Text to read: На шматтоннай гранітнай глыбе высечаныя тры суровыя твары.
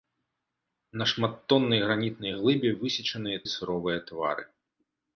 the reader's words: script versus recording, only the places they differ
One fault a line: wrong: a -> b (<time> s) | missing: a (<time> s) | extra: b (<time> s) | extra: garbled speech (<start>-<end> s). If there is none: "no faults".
missing: тры (3.4 s)